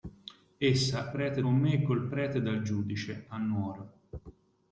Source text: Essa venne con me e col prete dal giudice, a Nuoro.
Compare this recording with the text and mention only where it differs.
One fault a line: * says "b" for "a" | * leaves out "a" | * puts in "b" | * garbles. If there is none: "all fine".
* says "prete" for "venne"